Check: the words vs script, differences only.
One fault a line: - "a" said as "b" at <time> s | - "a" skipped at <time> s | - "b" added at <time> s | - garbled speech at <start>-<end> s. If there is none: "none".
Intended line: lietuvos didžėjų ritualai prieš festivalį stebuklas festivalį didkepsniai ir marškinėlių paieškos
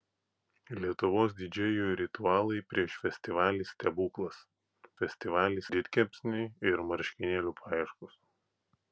none